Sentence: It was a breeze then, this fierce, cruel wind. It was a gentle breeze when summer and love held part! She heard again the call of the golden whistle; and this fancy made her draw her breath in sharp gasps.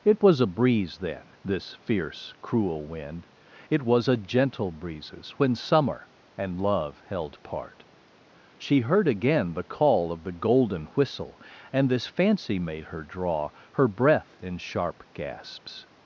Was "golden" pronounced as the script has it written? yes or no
yes